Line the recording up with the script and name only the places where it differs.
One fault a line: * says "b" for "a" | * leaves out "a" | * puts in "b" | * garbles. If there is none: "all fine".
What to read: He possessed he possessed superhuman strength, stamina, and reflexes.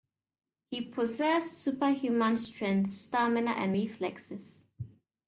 * leaves out "he possessed"